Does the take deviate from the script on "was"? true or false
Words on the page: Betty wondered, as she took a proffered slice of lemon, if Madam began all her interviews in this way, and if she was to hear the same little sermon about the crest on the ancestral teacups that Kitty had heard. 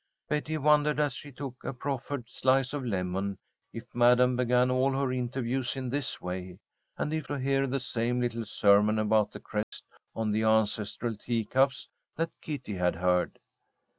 true